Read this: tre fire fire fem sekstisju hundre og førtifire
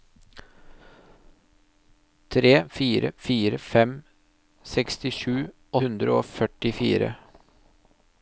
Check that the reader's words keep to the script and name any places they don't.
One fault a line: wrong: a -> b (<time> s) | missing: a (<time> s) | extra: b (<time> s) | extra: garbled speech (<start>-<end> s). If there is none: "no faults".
no faults